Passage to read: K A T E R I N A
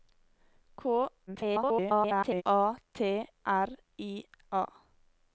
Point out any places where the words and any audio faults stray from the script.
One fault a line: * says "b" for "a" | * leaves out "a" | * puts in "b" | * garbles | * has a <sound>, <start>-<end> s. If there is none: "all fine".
* garbles
* leaves out "E"
* leaves out "N"